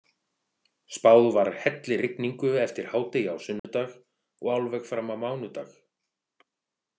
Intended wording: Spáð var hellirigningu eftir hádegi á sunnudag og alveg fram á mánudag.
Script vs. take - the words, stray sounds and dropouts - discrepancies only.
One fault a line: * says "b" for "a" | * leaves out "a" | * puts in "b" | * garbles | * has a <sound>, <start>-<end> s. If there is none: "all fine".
* has a dropout, 3.6-3.6 s